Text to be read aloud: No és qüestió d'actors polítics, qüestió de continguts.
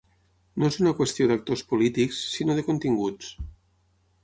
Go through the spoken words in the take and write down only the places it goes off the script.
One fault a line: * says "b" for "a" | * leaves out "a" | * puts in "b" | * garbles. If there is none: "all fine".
* puts in "una"
* says "sinó" for "qüestió"